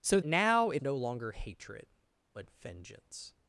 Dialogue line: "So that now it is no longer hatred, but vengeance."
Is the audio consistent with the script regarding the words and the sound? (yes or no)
no